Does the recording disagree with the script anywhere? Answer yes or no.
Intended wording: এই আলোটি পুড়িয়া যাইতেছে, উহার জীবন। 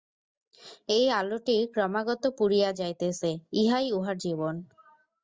yes